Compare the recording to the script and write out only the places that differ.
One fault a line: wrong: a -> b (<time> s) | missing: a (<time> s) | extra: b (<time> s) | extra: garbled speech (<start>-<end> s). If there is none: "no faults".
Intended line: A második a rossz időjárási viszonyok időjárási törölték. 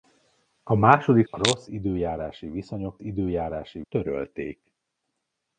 no faults